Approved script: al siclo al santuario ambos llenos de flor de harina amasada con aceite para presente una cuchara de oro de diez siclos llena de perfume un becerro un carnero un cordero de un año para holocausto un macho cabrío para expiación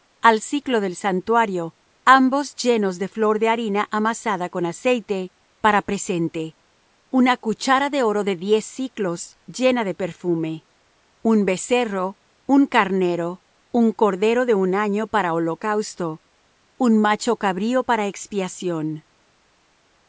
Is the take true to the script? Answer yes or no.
no